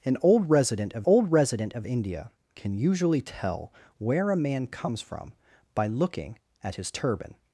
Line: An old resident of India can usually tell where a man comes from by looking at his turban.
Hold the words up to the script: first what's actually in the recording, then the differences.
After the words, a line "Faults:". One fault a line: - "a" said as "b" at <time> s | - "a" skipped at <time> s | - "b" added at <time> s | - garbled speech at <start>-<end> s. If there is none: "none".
An old resident of old resident of India can usually tell where a man comes from by looking at his turban.
Faults:
- "old resident of" added at 1.1 s